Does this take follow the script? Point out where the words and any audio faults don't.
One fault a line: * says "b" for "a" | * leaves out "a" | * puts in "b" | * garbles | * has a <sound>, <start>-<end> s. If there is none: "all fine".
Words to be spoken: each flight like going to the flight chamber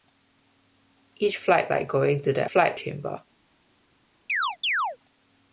* has a chirp, 4.3-5.0 s